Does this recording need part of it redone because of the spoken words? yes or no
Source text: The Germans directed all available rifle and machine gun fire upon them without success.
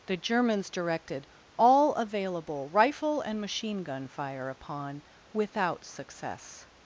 yes